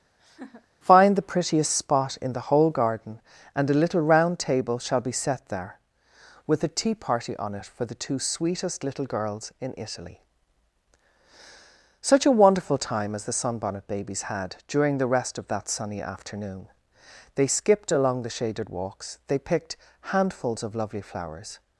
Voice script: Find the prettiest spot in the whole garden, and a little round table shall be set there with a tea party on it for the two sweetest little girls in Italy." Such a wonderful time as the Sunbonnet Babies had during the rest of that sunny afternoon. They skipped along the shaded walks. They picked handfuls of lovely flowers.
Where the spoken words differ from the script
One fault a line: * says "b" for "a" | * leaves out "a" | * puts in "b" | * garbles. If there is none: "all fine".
all fine